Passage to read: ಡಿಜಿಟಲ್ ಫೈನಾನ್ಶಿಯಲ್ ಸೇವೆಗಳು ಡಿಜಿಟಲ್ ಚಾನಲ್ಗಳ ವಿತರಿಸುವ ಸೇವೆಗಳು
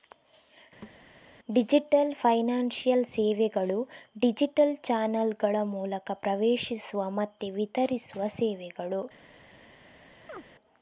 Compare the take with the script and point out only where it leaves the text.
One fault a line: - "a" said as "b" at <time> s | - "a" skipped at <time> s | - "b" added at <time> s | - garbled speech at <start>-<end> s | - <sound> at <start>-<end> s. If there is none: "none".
- thud at 0.8-1.0 s
- "ಮೂಲಕ ಪ್ರವೇಶಿಸುವ ಮತ್ತೆ" added at 5.7 s
- chirp at 10.3-10.4 s